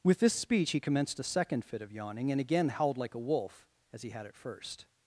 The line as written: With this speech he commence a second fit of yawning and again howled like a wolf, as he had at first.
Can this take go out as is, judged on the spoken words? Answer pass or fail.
fail